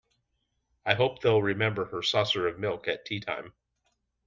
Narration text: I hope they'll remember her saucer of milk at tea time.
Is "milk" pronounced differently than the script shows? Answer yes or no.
no